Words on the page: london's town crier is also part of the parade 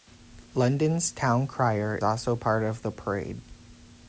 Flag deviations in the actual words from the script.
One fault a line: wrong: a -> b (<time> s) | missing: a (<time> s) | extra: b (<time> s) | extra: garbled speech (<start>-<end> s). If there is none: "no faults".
missing: is (1.9 s)